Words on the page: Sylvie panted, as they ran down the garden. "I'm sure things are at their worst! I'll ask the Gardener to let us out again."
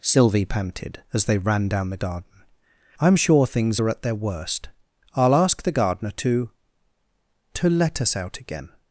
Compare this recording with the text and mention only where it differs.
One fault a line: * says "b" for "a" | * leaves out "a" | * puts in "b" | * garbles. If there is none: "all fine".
* puts in "to"